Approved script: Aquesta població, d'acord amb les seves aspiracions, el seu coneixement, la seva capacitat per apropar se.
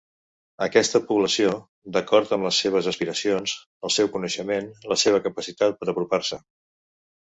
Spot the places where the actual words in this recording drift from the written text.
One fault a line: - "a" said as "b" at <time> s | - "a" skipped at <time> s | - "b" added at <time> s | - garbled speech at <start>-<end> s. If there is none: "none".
none